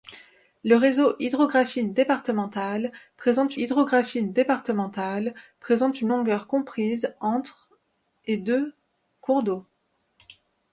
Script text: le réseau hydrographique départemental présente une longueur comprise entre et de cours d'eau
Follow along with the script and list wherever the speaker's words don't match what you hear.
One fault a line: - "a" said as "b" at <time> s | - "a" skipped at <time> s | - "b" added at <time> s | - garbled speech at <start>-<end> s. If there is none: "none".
- "hydrographique départemental présente" added at 3.6 s